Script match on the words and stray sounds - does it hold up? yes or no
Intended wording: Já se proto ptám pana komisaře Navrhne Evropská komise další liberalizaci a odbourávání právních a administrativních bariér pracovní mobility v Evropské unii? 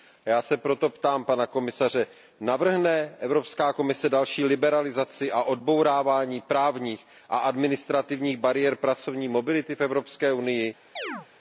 no